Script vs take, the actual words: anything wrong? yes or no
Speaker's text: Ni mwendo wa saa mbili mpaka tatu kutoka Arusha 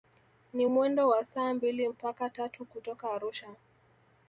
no